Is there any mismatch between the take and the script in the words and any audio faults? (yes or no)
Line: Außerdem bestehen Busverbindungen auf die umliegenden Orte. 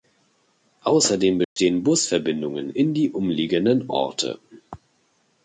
yes